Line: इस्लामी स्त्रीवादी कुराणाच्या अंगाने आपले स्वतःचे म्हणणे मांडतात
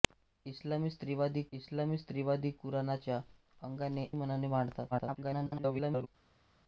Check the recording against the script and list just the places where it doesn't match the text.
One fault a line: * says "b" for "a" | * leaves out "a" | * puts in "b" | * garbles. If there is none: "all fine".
* puts in "इस्लामी स्त्रीवादी"
* leaves out "आपले स्वतःचे"
* garbles